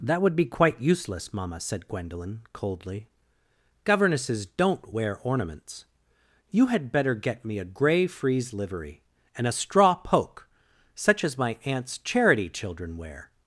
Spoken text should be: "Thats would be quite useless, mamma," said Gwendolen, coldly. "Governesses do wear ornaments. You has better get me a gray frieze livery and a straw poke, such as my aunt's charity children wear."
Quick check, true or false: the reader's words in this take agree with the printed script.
false